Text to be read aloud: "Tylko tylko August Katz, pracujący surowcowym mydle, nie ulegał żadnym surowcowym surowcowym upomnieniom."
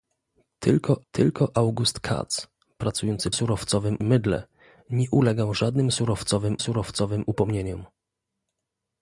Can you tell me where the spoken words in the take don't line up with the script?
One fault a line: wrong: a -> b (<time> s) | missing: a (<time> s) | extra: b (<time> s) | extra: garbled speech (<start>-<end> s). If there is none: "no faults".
no faults